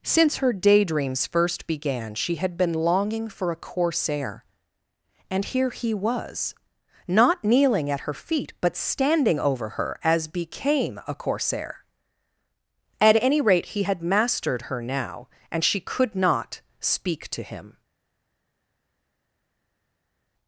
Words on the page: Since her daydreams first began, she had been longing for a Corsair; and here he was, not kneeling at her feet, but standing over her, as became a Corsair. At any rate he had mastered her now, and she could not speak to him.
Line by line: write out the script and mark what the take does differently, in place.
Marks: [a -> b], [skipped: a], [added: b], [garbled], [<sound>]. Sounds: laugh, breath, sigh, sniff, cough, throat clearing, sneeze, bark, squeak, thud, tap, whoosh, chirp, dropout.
Since her daydreams first began, she had been longing for a Corsair; and here he was, not kneeling at her feet, but standing over her, as became a Corsair. At any rate he had mastered her now, and she could not speak to him.